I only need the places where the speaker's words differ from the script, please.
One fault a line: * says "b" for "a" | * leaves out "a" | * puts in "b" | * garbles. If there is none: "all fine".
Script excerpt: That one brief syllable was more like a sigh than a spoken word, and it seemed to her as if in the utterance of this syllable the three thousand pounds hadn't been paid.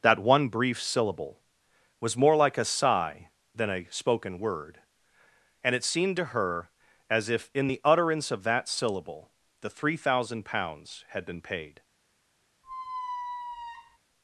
* says "that" for "this"
* says "had" for "hadn't"